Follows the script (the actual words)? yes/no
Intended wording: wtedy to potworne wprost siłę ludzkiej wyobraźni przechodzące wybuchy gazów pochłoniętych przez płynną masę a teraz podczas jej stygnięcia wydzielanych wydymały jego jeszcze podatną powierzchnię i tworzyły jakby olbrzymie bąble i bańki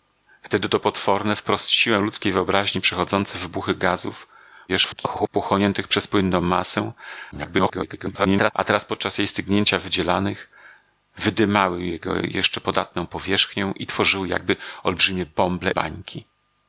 no